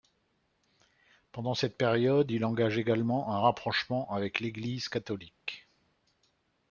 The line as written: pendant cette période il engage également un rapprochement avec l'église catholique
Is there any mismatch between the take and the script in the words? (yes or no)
no